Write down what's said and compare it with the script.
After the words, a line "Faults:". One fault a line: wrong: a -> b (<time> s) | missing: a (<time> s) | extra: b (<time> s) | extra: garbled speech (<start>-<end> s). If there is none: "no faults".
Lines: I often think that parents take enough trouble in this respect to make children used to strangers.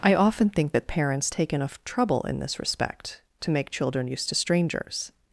I often think that parents take enough trouble in this respect to make children used to strangers.
Faults:
no faults